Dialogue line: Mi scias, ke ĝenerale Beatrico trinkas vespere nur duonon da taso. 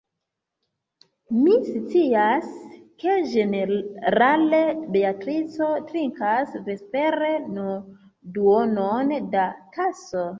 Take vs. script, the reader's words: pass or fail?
pass